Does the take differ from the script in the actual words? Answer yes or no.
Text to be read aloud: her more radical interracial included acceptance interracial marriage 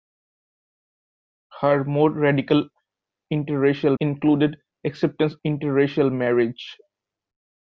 no